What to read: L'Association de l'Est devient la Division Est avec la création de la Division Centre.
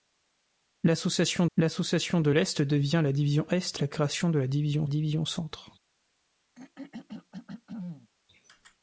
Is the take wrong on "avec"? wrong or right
wrong